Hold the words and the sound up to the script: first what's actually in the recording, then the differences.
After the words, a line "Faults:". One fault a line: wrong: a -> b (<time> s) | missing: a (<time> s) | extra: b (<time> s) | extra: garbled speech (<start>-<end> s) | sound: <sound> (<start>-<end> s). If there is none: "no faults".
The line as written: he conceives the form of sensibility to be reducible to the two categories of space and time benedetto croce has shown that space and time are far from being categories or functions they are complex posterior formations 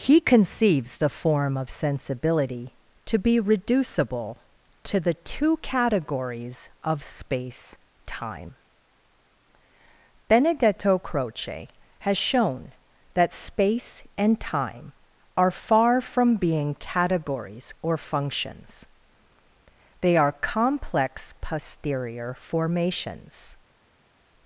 he conceives the form of sensibility to be reducible to the two categories of space time benedetto croce has shown that space and time are far from being categories or functions they are complex posterior formations
Faults:
missing: and (7.8 s)